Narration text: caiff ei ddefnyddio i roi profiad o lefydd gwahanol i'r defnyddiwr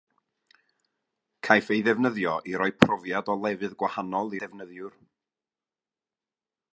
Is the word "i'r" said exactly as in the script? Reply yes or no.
no